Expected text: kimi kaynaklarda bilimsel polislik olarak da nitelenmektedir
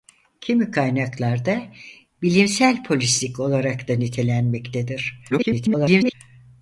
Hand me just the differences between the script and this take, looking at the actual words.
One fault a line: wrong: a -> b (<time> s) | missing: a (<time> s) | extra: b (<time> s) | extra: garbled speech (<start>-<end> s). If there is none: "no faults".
extra: garbled speech (5.3-6.1 s)